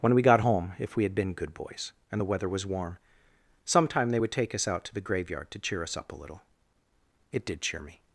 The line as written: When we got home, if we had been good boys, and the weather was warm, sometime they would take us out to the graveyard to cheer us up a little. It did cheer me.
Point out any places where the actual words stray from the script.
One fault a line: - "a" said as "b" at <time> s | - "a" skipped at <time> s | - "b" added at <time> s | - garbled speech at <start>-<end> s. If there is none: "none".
none